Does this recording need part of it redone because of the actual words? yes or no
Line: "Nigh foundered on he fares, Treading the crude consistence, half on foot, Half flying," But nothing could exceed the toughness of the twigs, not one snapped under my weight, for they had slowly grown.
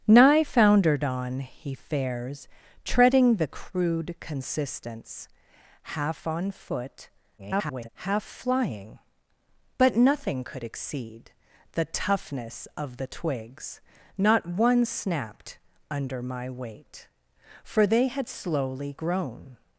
yes